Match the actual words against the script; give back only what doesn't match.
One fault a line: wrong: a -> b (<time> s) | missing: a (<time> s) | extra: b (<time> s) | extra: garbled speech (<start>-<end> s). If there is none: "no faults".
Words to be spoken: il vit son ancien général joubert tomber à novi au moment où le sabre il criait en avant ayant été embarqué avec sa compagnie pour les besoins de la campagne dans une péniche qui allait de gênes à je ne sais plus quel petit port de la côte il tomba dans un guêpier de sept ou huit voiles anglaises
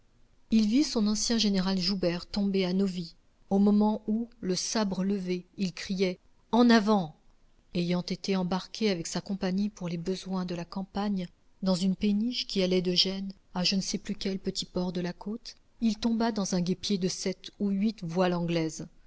extra: levé (5.0 s)